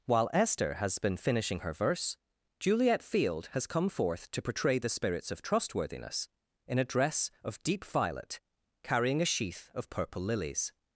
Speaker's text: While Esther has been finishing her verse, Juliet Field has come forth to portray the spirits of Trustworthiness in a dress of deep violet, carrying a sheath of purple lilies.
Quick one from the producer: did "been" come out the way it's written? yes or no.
yes